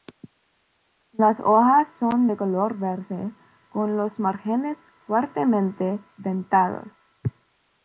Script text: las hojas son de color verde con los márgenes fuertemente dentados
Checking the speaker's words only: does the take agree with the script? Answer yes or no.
yes